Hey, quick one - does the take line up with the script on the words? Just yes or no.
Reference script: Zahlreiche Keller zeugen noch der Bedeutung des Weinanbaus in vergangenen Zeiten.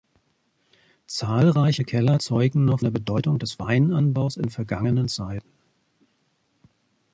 yes